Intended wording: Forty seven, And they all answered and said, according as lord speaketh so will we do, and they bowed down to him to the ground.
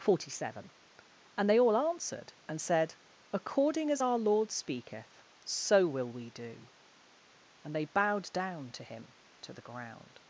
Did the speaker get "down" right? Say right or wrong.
right